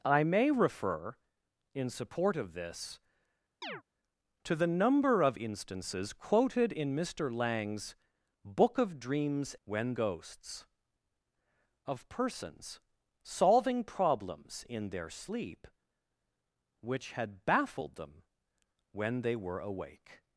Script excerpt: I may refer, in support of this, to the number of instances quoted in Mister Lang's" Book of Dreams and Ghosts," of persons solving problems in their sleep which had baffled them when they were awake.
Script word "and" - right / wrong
wrong